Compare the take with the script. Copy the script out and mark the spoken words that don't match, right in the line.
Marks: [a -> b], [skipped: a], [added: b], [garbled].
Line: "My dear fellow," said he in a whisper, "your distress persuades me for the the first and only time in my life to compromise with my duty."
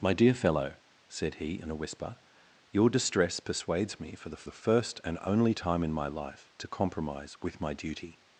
"My dear fellow," said he in a whisper, "your distress persuades me for the the first and only time in my life to compromise with my duty."